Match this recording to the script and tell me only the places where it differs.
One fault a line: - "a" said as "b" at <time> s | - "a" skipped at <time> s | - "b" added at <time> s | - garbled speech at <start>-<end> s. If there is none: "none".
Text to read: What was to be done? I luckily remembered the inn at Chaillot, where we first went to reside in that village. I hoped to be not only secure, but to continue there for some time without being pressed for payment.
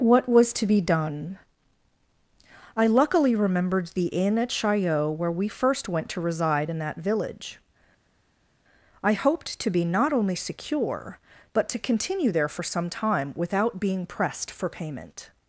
none